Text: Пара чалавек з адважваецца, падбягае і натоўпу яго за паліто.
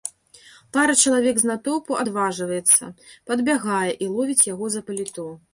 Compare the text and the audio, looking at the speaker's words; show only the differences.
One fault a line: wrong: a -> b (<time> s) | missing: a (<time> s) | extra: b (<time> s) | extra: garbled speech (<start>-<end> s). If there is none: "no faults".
extra: натоўпу (1.5 s)
wrong: натоўпу -> ловіць (4.2 s)